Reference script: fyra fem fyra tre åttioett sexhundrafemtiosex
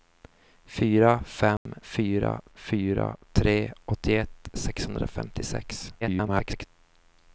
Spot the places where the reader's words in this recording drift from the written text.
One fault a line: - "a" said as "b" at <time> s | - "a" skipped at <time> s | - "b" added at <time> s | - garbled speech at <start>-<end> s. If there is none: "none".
- "fyra" added at 2.5 s
- garbled speech at 6.0-6.6 s